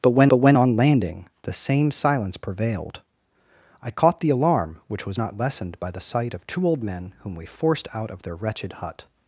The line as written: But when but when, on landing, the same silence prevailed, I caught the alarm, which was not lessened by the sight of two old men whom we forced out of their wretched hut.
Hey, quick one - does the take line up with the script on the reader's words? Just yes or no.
yes